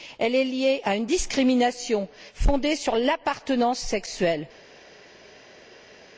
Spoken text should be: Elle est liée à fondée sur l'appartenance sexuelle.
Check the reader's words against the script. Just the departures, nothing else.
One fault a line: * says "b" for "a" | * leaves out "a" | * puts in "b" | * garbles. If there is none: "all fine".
* puts in "une discrimination"